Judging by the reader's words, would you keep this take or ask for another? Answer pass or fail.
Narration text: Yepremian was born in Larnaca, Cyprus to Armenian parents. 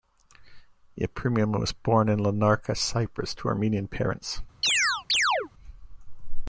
pass